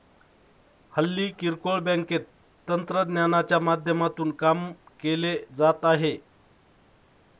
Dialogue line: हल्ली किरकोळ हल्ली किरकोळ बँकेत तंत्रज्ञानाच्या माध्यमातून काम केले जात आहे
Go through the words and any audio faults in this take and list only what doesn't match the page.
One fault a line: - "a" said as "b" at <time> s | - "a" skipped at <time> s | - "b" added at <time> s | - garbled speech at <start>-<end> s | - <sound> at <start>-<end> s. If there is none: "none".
- "हल्ली किरकोळ" skipped at 1.8 s